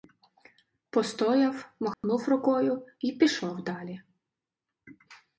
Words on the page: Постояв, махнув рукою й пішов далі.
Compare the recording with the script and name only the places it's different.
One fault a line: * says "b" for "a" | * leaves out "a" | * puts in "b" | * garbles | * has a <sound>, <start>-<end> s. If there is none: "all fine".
* has a dropout, 1.9-2.0 s